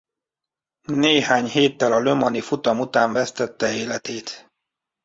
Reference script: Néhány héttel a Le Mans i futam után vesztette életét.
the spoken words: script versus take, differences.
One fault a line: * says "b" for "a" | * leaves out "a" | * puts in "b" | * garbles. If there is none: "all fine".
all fine